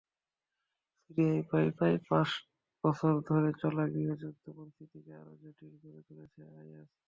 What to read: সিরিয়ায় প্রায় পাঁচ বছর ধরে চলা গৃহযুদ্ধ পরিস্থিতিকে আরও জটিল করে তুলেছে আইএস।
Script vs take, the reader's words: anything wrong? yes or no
yes